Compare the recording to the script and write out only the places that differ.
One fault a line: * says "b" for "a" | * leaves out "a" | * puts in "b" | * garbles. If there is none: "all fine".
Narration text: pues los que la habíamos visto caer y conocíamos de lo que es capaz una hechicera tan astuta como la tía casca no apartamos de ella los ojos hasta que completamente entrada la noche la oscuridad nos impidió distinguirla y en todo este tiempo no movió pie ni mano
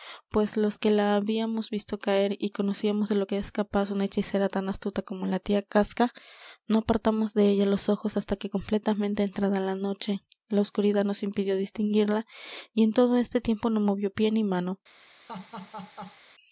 all fine